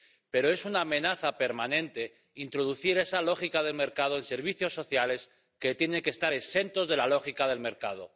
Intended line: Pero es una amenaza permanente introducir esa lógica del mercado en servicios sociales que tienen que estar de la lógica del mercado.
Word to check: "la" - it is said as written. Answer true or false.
true